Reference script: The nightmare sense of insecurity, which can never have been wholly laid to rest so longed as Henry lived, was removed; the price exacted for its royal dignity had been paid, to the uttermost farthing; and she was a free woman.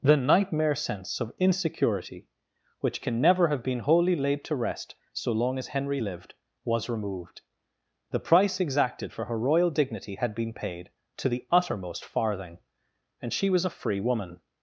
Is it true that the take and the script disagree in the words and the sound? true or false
true